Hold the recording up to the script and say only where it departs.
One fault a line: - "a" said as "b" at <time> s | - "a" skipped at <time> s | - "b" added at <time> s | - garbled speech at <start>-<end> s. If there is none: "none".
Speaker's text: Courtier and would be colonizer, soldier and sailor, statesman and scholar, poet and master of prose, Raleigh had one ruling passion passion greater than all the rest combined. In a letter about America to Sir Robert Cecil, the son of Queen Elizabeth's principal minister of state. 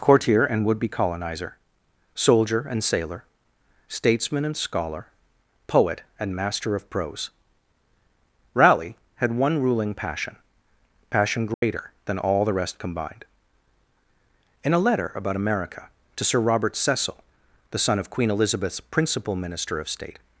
none